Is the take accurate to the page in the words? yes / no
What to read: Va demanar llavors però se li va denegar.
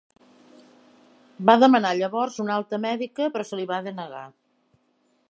no